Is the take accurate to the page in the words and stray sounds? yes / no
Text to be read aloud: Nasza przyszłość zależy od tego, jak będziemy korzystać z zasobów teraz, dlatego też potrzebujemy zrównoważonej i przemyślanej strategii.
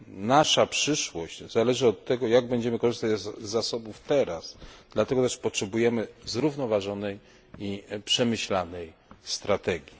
yes